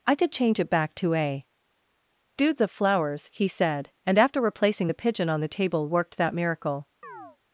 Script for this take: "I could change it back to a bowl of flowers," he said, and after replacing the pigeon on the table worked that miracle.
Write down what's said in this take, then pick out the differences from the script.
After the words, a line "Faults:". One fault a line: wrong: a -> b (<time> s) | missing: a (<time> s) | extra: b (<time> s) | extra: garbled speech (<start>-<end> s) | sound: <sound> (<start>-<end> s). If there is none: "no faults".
"I could change it back to a dudes of flowers," he said, and after replacing the pigeon on the table worked that miracle.
Faults:
wrong: bowl -> dudes (2.4 s)
sound: chirp (7.0-7.4 s)